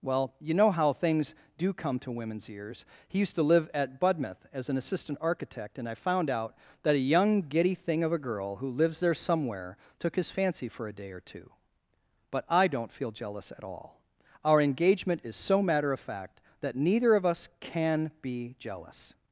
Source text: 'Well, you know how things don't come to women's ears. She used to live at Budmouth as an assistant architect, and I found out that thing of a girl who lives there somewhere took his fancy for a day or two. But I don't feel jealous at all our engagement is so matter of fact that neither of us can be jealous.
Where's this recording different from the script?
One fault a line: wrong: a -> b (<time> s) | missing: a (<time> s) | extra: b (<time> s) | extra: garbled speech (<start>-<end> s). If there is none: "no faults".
wrong: don't -> do (1.6 s)
wrong: She -> He (3.1 s)
extra: a young giddy (7.0 s)